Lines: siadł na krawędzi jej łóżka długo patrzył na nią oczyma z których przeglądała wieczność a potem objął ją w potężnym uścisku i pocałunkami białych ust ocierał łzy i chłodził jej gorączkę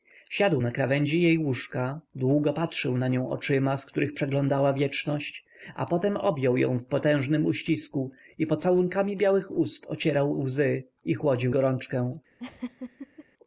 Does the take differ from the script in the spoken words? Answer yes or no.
yes